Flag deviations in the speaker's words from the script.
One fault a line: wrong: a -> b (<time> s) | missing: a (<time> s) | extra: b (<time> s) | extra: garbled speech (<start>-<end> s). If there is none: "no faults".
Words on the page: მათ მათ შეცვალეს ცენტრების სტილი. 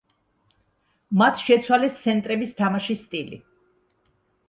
missing: მათ (1.4 s)
extra: თამაშის (2.6 s)